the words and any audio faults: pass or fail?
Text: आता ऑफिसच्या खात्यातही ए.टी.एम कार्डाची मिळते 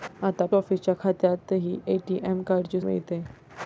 pass